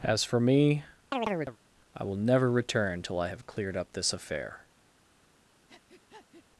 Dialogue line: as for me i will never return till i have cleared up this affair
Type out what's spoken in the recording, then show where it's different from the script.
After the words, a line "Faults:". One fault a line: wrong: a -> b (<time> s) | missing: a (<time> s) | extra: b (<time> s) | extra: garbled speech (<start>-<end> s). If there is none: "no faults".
as for me i will never return till i have cleared up this affair
Faults:
no faults